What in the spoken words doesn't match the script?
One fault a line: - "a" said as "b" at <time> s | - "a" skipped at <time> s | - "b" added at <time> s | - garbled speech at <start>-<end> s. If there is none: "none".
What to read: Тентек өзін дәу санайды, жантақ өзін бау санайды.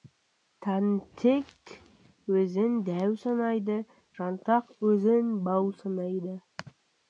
none